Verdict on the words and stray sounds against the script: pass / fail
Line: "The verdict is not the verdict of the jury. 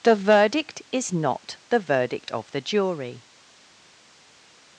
pass